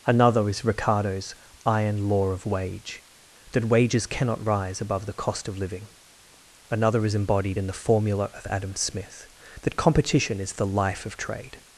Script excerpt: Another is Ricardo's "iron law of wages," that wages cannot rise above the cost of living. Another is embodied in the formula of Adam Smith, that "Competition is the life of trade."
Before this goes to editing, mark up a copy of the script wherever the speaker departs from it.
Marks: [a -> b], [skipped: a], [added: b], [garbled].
Another is Ricardo's "iron law of [wages," -> wage] that wages cannot rise above the cost of living. Another is embodied in the formula of Adam Smith, that "Competition is the life of trade."